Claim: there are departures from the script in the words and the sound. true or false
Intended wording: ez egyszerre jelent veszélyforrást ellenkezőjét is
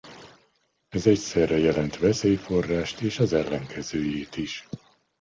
true